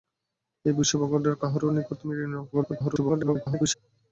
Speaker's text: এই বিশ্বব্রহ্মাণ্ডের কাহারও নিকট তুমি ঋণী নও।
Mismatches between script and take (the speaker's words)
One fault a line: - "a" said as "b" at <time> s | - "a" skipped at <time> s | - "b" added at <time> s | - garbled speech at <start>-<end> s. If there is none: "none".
- garbled speech at 2.5-3.7 s